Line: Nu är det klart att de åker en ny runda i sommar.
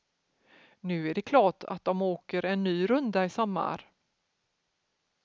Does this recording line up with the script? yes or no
yes